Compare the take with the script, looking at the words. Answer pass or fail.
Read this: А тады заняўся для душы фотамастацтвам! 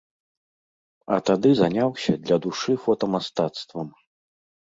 pass